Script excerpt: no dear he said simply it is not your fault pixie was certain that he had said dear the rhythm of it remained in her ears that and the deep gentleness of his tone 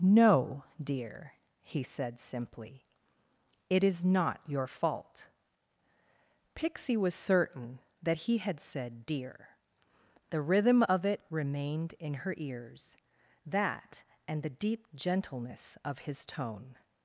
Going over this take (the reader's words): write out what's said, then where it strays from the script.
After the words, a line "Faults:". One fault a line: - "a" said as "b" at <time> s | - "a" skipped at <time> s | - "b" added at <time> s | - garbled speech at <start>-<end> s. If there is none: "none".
no dear he said simply it is not your fault pixie was certain that he had said dear the rhythm of it remained in her ears that and the deep gentleness of his tone
Faults:
none